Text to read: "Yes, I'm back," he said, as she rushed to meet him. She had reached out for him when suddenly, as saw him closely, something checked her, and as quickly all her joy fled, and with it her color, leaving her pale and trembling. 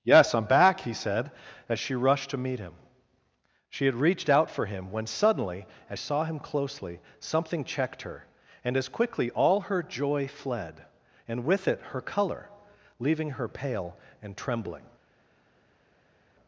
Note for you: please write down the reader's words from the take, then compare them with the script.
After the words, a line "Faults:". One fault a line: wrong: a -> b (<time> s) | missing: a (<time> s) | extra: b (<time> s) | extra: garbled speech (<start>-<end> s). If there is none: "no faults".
"Yes, I'm back," he said, as she rushed to meet him. She had reached out for him when suddenly, as saw him closely, something checked her, and as quickly all her joy fled, and with it her color, leaving her pale and trembling.
Faults:
no faults